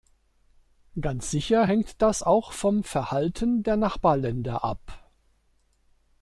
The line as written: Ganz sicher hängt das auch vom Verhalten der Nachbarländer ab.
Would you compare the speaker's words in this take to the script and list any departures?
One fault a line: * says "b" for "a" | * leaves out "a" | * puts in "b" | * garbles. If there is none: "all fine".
all fine